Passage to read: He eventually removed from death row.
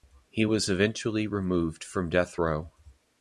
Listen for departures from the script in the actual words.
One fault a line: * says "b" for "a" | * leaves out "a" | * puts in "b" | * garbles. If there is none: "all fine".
* puts in "was"